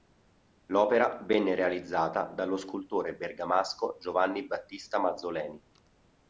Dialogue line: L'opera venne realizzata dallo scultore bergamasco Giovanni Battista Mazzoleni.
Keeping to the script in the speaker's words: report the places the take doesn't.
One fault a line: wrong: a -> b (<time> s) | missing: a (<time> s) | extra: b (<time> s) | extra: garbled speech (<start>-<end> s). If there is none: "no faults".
no faults